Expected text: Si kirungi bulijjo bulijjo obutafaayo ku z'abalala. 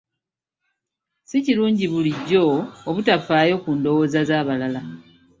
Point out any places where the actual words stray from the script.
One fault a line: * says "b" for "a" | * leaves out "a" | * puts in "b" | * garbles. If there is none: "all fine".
* leaves out "bulijjo"
* puts in "ndowooza"